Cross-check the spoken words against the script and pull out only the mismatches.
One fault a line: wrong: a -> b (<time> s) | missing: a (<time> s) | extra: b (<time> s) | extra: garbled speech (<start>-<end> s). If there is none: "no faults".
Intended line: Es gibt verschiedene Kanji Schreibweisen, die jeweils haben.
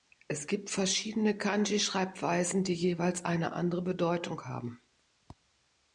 extra: eine andere Bedeutung (3.2 s)